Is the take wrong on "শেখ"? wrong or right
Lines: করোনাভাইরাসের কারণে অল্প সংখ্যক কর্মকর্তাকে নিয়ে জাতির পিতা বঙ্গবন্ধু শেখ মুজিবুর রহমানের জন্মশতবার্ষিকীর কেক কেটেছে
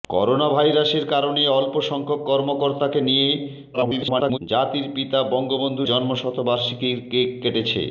wrong